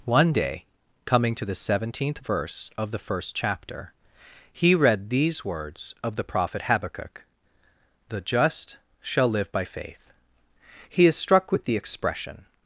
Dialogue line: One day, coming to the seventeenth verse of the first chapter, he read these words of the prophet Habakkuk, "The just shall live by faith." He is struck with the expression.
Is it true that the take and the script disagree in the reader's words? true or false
false